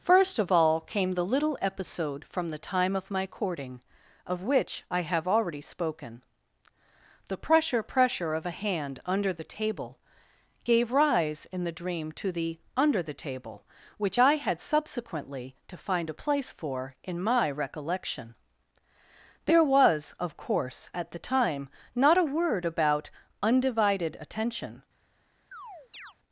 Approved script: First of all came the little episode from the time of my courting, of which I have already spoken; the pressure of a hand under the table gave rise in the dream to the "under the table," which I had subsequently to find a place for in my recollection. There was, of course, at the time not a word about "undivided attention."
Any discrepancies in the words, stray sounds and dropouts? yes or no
yes